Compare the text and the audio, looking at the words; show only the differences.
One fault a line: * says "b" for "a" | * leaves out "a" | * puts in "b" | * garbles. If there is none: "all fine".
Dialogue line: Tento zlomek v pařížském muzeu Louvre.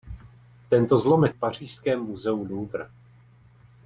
all fine